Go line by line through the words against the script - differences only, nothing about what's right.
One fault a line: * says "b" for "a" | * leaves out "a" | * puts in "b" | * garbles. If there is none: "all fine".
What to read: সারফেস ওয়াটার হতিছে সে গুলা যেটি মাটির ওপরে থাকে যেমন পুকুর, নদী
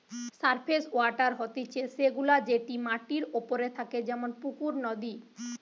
all fine